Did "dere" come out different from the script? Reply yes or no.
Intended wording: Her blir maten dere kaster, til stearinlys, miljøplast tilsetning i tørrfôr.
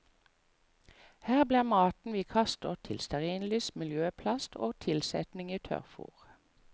yes